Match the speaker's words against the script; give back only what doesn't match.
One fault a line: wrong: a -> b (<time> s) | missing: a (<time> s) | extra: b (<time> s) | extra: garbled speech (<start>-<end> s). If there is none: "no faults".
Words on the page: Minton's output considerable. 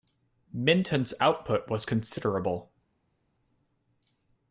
extra: was (1.7 s)